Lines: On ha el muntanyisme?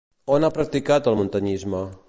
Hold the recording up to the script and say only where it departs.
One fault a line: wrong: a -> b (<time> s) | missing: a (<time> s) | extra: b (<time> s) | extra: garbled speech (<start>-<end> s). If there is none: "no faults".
extra: practicat (0.6 s)